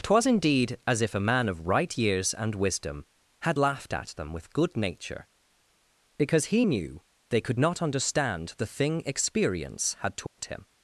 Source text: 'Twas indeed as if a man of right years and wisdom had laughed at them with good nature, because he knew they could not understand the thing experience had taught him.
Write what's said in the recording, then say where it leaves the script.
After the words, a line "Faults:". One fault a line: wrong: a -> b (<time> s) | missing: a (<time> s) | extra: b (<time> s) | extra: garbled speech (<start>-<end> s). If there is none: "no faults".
'Twas indeed as if a man of right years and wisdom had laughed at them with good nature, because he knew they could not understand the thing experience had taught him.
Faults:
no faults